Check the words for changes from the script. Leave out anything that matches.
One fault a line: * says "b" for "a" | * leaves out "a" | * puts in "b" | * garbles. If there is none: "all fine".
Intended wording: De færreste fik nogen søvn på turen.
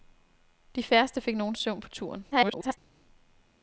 * garbles